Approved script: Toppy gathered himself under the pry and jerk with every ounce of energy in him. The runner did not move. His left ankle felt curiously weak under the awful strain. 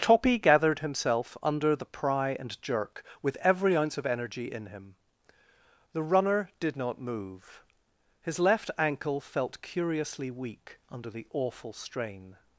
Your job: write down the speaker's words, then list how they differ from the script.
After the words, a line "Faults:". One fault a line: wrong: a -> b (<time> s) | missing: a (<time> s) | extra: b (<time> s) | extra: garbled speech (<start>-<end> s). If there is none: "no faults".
Toppy gathered himself under the pry and jerk with every ounce of energy in him. The runner did not move. His left ankle felt curiously weak under the awful strain.
Faults:
no faults